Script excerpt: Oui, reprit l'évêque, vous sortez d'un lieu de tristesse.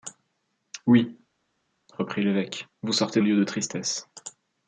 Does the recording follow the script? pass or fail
fail